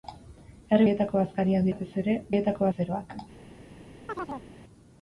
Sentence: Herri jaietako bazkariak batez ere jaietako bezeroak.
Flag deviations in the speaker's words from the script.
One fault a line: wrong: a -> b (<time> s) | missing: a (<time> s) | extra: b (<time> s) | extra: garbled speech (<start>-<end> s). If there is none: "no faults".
no faults